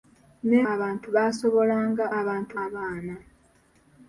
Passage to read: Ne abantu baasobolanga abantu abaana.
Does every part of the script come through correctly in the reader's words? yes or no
yes